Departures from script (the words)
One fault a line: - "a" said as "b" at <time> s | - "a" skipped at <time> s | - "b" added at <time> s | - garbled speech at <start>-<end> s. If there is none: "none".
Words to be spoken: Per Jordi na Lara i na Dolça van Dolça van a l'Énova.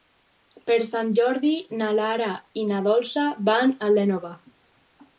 - "Sant" added at 0.9 s
- "Dolça van" skipped at 3.8 s